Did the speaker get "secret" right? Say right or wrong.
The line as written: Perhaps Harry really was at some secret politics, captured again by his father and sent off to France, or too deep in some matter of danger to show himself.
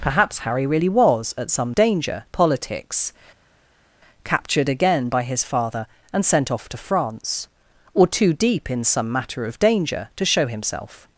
wrong